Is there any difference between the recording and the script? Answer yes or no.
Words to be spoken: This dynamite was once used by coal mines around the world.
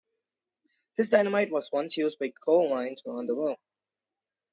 no